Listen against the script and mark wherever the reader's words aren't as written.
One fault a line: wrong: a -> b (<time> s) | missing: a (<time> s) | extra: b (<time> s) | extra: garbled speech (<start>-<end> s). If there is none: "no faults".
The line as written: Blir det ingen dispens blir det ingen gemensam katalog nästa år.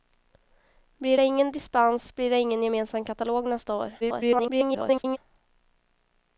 extra: garbled speech (4.0-5.2 s)